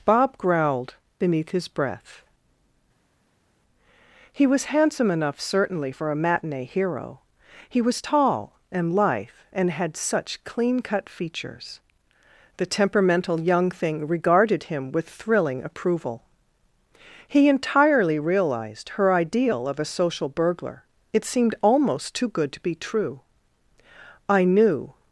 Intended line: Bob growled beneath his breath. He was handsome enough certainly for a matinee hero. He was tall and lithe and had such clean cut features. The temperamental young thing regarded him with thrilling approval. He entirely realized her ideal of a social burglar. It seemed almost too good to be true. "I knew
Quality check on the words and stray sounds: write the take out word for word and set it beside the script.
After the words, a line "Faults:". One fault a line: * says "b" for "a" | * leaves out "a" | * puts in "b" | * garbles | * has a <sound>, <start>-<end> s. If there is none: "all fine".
Bob growled beneath his breath. He was handsome enough certainly for a matinee hero. He was tall and lithe and had such clean cut features. The temperamental young thing regarded him with thrilling approval. He entirely realized her ideal of a social burglar. It seemed almost too good to be true. "I knew
Faults:
all fine